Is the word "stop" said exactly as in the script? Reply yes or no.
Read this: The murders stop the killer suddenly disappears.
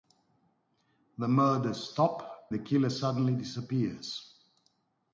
yes